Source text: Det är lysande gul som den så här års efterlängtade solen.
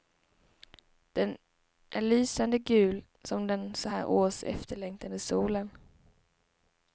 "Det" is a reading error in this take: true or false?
true